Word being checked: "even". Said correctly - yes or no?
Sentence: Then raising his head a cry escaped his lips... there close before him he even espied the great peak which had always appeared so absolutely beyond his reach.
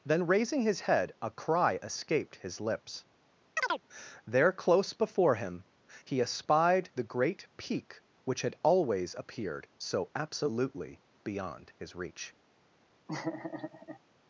no